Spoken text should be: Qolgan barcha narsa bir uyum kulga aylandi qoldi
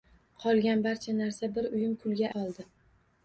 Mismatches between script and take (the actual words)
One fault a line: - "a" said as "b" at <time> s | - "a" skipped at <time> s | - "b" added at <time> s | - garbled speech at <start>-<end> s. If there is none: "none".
- "aylandi" skipped at 2.3 s